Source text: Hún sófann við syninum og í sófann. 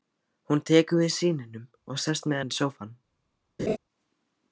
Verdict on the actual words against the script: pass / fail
fail